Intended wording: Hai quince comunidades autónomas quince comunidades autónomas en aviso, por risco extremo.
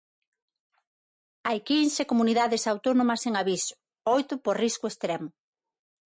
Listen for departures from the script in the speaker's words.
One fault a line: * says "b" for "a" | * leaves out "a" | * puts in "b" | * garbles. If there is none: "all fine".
* leaves out "quince comunidades autónomas"
* puts in "oito"